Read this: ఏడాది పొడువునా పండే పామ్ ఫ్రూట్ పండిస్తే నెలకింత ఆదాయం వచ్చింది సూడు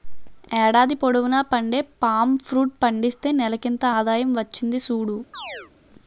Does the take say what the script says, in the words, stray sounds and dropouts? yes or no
no